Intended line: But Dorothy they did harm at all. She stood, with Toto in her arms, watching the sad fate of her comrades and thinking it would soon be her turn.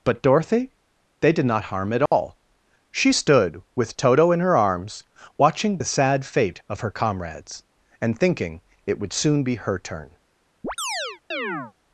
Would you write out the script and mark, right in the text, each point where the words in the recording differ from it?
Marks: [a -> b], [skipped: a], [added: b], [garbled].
But Dorothy they did [added: not] harm at all. She stood, with Toto in her arms, watching the sad fate of her comrades and thinking it would soon be her turn.